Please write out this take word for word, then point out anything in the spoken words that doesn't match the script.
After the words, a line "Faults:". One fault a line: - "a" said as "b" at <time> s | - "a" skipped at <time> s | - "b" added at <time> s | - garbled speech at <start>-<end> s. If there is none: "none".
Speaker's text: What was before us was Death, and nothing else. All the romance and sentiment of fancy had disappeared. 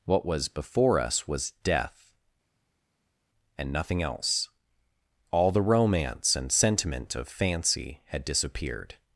What was before us was Death, and nothing else. All the romance and sentiment of fancy had disappeared.
Faults:
none